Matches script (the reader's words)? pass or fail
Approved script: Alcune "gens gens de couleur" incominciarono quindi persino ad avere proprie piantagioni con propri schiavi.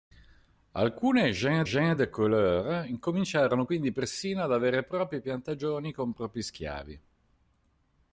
pass